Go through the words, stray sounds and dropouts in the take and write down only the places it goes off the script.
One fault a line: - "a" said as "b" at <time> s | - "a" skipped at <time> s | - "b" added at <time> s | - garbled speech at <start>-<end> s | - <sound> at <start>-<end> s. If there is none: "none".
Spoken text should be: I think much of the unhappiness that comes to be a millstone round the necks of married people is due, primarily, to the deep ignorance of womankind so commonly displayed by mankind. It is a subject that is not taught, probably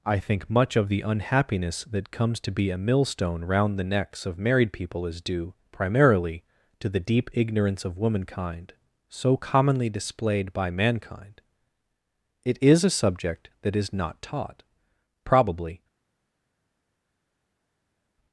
none